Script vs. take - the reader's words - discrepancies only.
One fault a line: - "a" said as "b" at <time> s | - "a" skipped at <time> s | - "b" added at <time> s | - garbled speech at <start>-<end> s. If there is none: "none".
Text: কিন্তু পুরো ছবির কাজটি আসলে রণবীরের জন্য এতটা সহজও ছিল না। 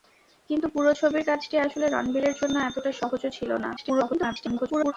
- garbled speech at 3.8-4.9 s